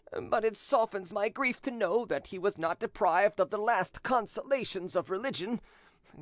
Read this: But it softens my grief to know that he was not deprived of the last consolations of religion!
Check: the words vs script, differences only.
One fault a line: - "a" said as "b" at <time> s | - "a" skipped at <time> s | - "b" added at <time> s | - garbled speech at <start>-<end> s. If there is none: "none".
none